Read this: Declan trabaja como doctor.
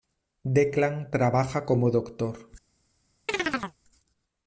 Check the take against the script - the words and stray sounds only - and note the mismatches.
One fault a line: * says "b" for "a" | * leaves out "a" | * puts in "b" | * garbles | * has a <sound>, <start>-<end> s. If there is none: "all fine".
* has a chirp, 3.3-3.8 s